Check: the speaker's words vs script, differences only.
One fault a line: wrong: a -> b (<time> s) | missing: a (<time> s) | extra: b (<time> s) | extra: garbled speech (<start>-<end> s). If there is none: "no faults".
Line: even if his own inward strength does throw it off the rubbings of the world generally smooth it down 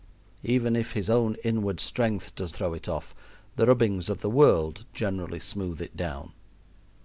no faults